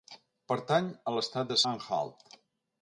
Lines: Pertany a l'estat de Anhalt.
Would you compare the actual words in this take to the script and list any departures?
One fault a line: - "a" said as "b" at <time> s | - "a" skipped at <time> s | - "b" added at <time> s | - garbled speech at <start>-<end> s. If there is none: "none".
none